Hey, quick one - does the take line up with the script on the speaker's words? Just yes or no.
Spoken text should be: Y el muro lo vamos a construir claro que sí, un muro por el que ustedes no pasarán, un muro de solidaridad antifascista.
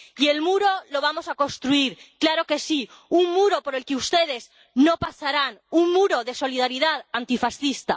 yes